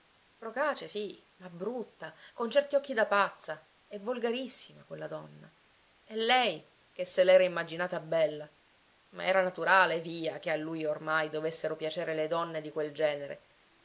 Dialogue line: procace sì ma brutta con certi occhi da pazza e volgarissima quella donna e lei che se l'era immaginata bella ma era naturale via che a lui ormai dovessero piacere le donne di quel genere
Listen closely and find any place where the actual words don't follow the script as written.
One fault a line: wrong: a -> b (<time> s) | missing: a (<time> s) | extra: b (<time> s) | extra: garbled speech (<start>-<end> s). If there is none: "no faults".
no faults